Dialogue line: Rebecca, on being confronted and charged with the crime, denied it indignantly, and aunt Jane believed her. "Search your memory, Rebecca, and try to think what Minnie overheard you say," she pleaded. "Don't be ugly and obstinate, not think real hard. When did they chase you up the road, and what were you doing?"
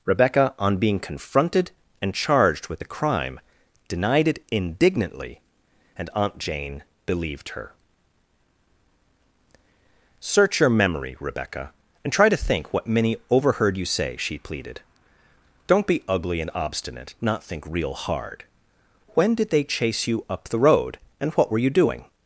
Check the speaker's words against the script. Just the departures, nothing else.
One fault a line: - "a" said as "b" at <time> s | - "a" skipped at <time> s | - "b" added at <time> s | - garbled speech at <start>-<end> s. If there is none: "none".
none